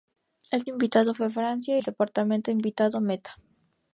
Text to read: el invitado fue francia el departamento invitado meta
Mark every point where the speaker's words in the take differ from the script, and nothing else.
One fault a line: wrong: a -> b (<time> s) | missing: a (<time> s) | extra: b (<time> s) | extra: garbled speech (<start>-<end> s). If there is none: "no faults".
no faults